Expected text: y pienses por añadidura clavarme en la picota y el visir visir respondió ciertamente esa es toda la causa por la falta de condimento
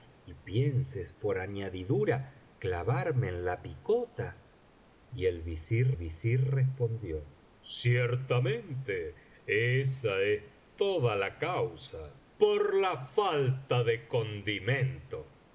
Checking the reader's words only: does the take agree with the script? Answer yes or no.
yes